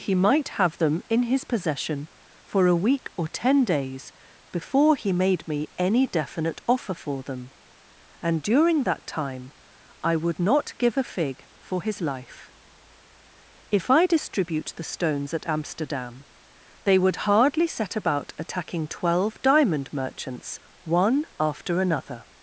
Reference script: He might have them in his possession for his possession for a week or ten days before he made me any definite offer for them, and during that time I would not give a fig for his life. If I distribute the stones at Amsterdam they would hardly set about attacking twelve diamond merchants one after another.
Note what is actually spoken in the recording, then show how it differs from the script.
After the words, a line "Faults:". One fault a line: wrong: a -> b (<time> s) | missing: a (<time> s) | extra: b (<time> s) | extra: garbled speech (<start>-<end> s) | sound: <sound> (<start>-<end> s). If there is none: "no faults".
He might have them in his possession for a week or ten days before he made me any definite offer for them, and during that time I would not give a fig for his life. If I distribute the stones at Amsterdam they would hardly set about attacking twelve diamond merchants one after another.
Faults:
missing: his possession for (2.6 s)